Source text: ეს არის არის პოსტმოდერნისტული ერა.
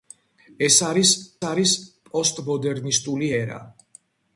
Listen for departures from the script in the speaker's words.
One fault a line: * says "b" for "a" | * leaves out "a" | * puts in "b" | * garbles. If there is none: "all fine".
all fine